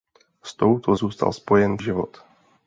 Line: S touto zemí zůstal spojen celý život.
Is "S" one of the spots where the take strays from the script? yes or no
no